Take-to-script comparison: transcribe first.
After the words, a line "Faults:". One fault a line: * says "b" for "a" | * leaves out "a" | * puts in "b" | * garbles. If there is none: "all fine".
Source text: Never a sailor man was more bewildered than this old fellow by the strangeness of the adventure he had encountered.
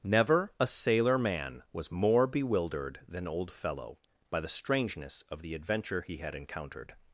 Never a sailor man was more bewildered than old fellow by the strangeness of the adventure he had encountered.
Faults:
* leaves out "this"